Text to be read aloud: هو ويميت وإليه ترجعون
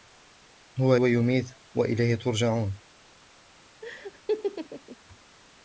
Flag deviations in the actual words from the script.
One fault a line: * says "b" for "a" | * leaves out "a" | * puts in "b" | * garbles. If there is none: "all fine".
all fine